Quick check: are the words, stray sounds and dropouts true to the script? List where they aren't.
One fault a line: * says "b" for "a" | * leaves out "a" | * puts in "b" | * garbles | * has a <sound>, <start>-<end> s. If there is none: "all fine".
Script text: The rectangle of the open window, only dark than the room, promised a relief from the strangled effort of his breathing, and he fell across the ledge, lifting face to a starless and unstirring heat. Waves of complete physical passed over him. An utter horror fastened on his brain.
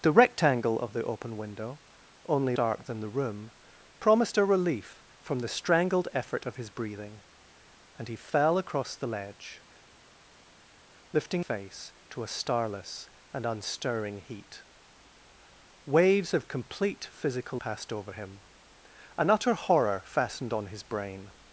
all fine